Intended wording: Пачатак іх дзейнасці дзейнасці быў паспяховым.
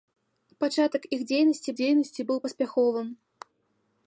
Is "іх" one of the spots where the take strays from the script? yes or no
no